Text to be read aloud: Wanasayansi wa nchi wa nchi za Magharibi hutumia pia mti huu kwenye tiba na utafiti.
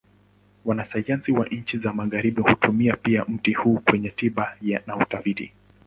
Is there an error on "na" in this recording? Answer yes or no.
no